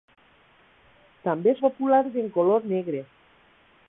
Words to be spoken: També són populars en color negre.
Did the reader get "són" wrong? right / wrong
wrong